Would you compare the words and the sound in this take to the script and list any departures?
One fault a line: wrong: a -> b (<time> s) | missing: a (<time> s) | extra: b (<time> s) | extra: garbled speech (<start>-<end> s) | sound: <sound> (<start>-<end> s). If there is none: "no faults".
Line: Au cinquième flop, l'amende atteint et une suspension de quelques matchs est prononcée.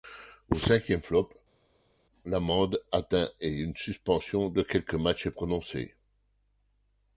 no faults